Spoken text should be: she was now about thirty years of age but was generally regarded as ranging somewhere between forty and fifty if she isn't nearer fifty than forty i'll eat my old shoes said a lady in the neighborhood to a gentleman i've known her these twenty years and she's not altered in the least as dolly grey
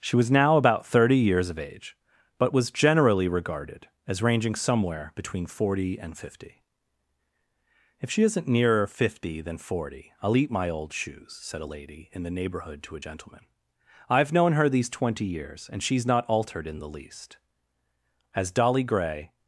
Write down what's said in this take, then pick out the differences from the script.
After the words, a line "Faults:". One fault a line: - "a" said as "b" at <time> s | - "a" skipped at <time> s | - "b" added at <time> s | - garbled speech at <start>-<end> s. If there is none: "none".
she was now about thirty years of age but was generally regarded as ranging somewhere between forty and fifty if she isn't nearer fifty than forty i'll eat my old shoes said a lady in the neighborhood to a gentleman i've known her these twenty years and she's not altered in the least as dolly grey
Faults:
none